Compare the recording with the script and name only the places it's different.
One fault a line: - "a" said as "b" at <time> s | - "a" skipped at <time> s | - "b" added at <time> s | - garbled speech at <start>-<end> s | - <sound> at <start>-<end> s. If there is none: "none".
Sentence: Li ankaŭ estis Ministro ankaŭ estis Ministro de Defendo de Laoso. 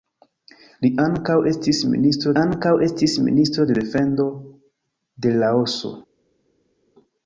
none